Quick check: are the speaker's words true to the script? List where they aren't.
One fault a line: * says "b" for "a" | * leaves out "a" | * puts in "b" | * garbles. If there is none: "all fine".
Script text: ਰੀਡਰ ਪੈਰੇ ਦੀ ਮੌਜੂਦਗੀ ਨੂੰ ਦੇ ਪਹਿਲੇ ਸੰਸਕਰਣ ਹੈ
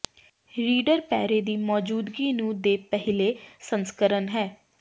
all fine